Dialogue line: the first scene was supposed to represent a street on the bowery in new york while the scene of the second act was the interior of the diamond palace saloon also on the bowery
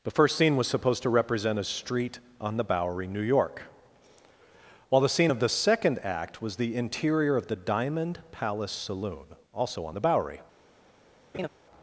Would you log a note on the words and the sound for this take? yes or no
yes